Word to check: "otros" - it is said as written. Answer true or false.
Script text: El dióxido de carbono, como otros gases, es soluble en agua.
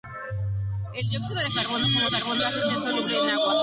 false